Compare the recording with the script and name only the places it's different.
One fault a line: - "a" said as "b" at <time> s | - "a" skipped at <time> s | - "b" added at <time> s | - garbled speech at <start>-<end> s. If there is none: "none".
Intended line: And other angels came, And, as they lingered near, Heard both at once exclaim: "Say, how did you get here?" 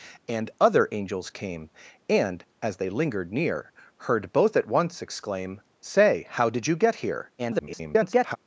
- garbled speech at 7.4-8.4 s